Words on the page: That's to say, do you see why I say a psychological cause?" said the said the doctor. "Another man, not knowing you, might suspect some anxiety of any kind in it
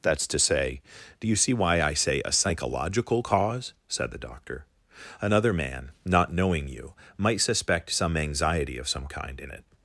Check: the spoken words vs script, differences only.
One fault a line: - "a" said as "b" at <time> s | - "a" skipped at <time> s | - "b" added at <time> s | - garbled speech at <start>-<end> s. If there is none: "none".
- "said the" skipped at 4.2 s
- "any" said as "some" at 8.9 s